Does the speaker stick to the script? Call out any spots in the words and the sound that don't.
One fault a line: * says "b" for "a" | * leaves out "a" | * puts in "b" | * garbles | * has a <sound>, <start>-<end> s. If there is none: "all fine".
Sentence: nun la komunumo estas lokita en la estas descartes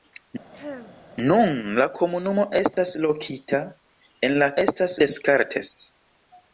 * has a throat clearing, 0.5-1.0 s
* has a dropout, 2.7-2.8 s